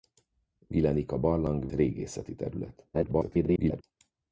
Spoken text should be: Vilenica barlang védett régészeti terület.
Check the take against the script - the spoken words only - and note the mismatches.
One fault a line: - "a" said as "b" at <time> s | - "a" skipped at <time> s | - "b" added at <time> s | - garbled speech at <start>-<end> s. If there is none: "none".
- "védett" skipped at 1.7 s
- garbled speech at 2.9-3.8 s